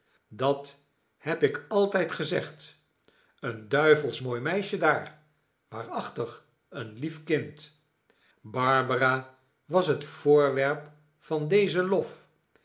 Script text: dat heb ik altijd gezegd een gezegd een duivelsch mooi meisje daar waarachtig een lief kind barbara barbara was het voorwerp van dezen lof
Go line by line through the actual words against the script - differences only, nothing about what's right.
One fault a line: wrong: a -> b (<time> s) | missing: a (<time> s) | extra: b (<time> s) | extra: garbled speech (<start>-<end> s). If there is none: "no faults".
missing: gezegd een (3.7 s)
missing: barbara (9.4 s)